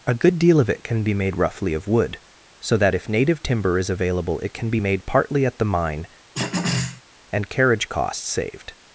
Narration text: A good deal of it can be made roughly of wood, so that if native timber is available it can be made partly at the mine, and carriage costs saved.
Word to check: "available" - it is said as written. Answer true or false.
true